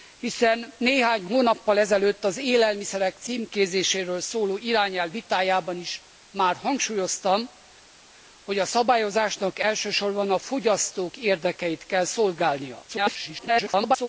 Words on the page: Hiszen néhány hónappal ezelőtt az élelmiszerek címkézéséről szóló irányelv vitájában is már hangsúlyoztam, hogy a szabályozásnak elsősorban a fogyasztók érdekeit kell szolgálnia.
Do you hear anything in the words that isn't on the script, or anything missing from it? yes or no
yes